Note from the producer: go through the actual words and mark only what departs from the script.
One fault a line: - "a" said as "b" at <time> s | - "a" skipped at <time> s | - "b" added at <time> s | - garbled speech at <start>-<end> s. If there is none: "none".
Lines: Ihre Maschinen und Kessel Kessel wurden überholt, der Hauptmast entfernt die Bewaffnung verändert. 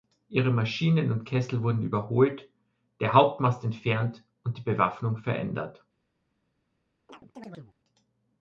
- "Kessel" skipped at 1.6 s
- "und" added at 4.4 s